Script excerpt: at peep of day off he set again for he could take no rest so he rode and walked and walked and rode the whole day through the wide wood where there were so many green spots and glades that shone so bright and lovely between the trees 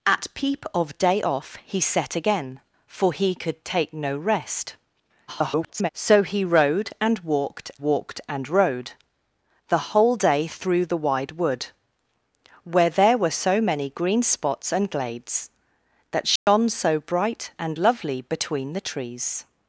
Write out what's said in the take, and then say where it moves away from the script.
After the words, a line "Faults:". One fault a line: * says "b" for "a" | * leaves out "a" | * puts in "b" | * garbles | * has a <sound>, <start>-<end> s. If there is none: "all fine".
at peep of day off he set again for he could take no rest [garbled] so he rode and walked walked and rode the whole day through the wide wood where there were so many green spots and glades that shone so bright and lovely between the trees
Faults:
* garbles
* leaves out "and"
* has a dropout, 16.4-16.5 s